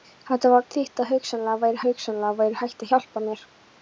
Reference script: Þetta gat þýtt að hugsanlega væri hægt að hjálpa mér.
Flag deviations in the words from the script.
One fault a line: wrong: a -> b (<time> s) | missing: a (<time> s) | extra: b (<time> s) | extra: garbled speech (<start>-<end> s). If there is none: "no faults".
missing: gat (0.5 s)
extra: hugsanlega væri (1.9 s)